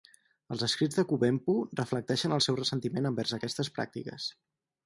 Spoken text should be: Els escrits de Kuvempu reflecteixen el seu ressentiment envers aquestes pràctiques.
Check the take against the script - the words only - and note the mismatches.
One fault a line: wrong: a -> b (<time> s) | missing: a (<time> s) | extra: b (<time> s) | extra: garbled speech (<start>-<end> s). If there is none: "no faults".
no faults